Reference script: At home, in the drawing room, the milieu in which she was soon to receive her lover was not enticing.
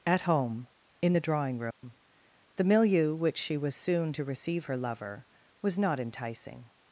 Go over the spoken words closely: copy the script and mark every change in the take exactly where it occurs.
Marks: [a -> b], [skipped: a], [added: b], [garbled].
At home, in the drawing room, the milieu [skipped: in] which she was soon to receive her lover was not enticing.